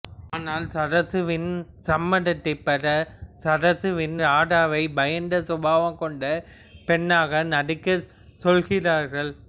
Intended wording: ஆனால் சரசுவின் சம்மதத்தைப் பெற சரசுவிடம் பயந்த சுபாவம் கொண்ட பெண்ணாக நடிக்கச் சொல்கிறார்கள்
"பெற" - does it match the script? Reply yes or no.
yes